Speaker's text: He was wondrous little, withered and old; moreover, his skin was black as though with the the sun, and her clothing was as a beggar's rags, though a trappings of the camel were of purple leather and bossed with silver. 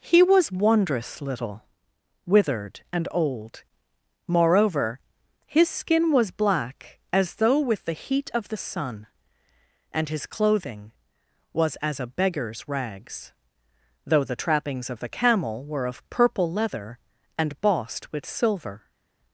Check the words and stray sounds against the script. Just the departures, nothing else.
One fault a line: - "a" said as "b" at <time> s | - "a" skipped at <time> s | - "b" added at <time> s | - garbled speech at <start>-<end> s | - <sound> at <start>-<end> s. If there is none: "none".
- "heat of" added at 7.9 s
- "her" said as "his" at 10.1 s
- "a" said as "the" at 14.2 s